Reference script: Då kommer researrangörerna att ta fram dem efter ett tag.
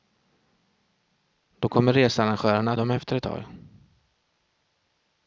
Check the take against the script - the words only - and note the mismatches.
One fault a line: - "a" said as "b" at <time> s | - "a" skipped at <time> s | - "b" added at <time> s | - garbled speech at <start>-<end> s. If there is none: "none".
- "ta fram" skipped at 2.8 s